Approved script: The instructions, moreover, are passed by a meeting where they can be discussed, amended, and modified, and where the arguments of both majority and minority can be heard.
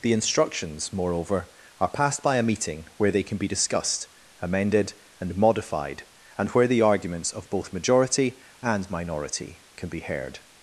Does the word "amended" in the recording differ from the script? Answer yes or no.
no